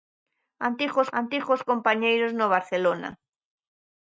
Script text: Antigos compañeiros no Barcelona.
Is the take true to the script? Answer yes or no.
no